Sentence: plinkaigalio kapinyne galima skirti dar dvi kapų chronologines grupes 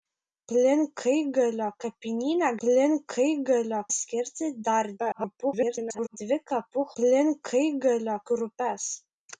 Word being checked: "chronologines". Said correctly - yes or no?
no